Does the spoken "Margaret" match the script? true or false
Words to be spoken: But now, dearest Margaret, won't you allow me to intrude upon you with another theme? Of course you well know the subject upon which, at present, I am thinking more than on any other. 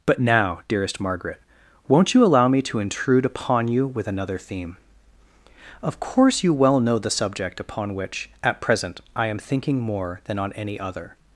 true